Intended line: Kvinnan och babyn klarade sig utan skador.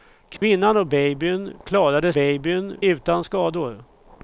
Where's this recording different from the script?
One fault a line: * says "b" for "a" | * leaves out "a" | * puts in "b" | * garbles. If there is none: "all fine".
* says "babyn" for "sig"